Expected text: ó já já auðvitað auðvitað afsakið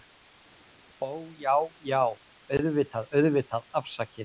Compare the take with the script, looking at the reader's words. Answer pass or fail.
pass